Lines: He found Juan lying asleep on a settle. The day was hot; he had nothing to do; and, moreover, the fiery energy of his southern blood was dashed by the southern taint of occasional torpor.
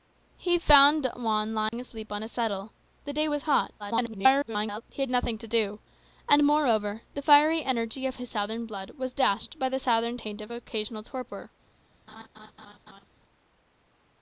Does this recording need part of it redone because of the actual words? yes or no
yes